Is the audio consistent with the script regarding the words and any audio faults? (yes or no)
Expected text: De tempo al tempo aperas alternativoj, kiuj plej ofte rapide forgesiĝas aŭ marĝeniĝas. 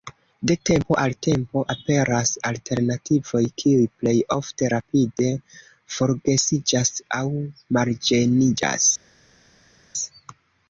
yes